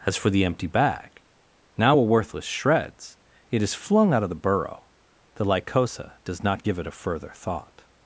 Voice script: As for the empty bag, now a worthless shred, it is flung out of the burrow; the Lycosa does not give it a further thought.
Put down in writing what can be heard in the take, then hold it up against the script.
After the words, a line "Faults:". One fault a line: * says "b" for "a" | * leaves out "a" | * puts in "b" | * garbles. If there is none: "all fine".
As for the empty bag, now a worthless shreds, it is flung out of the burrow; the Lycosa does not give it a further thought.
Faults:
* says "shreds" for "shred"